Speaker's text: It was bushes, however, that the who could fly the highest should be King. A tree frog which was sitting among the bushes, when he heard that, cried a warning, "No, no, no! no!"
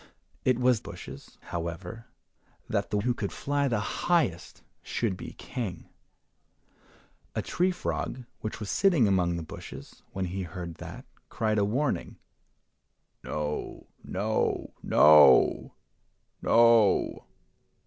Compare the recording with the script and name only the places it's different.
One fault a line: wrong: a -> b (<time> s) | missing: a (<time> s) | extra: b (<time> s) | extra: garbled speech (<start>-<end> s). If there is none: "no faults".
no faults